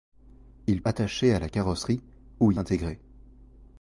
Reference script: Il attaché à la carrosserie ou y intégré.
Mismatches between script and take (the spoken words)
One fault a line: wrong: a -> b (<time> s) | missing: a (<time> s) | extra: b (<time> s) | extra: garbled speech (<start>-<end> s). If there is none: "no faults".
no faults